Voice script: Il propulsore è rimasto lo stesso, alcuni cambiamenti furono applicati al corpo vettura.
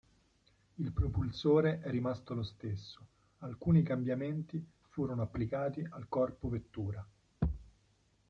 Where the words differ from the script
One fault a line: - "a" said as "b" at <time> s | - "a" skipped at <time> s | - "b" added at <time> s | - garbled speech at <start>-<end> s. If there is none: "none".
none